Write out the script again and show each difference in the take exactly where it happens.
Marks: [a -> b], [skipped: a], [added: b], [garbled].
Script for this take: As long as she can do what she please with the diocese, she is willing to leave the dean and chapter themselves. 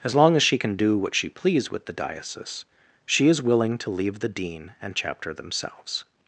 As long as she can do what she please with the diocese, she is willing to leave the dean and chapter themselves.